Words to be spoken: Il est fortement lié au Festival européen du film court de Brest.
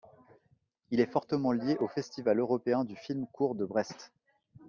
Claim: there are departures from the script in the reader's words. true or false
false